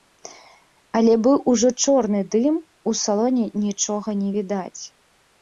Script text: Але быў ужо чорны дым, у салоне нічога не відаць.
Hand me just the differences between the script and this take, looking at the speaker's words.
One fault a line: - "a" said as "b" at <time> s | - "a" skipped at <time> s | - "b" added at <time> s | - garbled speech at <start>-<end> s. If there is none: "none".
none